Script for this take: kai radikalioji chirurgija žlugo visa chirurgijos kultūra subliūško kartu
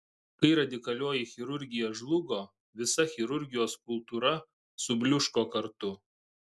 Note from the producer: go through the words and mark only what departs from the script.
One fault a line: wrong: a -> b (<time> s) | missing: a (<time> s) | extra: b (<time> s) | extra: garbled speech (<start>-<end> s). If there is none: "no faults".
no faults